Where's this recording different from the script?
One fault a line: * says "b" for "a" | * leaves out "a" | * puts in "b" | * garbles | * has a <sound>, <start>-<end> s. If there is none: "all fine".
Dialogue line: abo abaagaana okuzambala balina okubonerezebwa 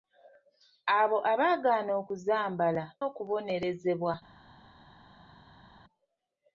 * leaves out "balina"